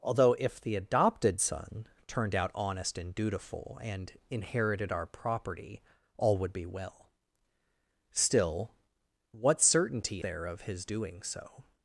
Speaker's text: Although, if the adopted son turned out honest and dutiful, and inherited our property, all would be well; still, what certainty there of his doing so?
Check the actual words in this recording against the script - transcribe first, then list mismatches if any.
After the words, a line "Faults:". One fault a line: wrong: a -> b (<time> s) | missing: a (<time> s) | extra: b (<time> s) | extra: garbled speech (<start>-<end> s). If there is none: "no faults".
Although, if the adopted son turned out honest and dutiful, and inherited our property, all would be well; still, what certainty there of his doing so?
Faults:
no faults